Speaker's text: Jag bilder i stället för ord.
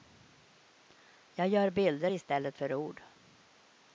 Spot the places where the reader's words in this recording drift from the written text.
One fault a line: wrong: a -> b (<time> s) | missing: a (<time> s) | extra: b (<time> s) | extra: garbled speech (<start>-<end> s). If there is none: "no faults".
extra: gör (1.5 s)